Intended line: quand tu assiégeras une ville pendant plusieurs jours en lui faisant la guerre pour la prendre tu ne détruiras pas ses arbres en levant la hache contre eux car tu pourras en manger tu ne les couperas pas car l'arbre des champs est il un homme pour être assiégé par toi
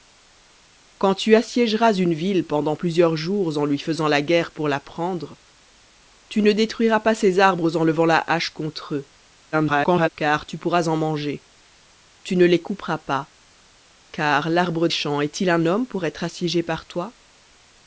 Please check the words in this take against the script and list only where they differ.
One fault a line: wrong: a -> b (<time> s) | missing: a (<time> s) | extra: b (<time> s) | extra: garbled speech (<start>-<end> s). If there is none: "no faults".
extra: garbled speech (9.5-10.1 s)
missing: des (14.9 s)